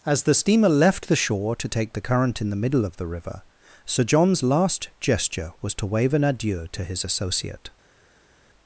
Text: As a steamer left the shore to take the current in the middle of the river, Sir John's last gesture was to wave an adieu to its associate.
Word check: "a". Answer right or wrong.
wrong